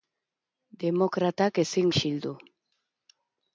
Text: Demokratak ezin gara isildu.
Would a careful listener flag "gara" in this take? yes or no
yes